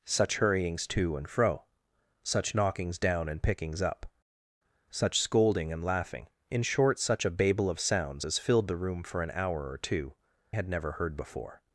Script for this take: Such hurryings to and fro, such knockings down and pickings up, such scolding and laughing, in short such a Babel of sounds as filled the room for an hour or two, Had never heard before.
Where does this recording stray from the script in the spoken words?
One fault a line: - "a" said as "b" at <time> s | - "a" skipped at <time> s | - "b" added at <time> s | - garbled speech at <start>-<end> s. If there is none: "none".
none